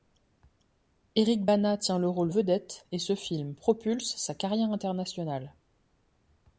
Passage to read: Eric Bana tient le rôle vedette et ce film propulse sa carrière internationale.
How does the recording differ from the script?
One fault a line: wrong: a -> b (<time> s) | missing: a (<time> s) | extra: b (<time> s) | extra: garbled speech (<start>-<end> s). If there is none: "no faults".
no faults